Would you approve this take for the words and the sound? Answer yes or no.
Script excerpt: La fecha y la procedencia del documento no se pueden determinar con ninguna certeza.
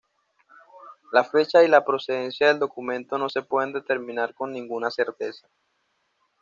yes